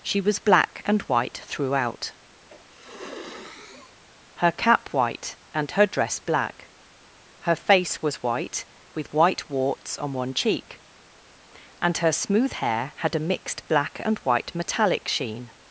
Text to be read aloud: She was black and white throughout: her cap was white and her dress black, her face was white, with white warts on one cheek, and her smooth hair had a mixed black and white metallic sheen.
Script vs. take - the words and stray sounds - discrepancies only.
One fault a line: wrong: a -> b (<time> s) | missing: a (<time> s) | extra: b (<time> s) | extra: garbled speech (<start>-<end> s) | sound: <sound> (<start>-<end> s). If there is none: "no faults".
sound: sniff (2.5-4.0 s)
missing: was (4.9 s)